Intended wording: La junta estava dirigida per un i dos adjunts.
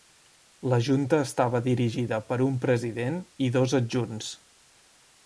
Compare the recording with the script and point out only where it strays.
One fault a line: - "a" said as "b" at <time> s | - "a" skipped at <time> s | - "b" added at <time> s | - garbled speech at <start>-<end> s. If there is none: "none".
- "president" added at 2.6 s